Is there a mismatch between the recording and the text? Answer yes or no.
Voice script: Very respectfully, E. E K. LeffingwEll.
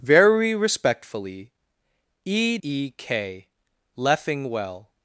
no